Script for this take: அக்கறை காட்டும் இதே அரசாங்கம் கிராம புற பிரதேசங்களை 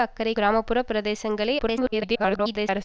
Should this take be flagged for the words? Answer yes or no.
yes